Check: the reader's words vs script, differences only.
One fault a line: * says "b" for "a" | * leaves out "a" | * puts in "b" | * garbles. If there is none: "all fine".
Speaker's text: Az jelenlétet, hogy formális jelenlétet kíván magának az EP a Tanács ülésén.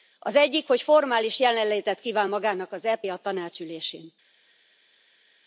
* says "egyik" for "jelenlétet"